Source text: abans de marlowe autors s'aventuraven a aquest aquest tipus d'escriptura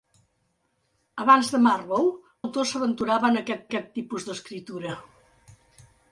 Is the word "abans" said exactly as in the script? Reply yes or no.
yes